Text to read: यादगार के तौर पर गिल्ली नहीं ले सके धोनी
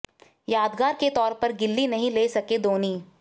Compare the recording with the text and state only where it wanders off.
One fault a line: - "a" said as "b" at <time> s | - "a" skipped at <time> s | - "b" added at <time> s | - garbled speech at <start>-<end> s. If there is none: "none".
none